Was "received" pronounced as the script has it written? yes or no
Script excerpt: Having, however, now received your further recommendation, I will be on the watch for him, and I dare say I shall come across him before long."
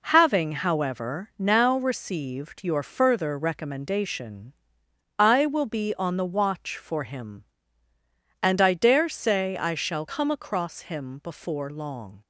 yes